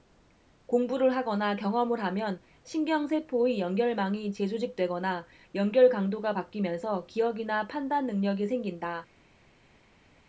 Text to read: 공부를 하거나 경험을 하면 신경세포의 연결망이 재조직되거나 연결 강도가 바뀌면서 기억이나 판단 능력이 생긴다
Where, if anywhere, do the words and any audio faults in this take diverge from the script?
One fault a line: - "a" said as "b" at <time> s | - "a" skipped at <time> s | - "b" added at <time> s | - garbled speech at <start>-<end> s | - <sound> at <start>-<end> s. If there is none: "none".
none